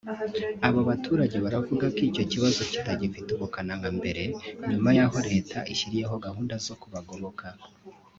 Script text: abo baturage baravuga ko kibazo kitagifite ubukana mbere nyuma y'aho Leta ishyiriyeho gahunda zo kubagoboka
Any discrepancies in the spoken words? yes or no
yes